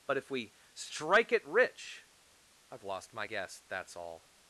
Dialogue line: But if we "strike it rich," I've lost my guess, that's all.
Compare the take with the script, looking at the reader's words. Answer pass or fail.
pass